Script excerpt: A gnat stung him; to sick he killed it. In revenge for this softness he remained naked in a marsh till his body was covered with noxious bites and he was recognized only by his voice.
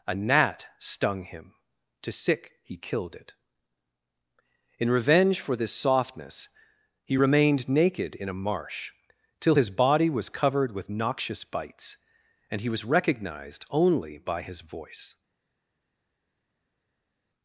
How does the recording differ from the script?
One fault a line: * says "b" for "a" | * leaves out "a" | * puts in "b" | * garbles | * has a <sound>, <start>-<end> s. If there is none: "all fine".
all fine